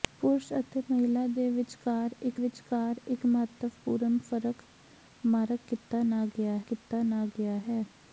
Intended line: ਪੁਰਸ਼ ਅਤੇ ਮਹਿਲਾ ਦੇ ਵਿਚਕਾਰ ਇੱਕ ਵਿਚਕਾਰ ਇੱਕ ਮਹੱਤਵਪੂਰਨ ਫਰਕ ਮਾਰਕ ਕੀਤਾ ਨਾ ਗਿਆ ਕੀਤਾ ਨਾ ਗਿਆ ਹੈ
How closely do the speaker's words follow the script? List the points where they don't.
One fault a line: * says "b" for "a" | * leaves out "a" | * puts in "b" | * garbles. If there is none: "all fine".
all fine